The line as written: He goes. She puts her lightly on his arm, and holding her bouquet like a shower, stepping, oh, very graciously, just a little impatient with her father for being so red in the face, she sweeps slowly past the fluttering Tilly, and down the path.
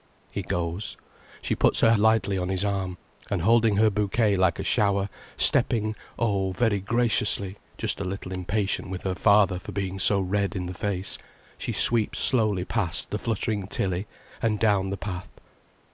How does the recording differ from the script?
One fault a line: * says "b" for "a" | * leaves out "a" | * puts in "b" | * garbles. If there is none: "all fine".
all fine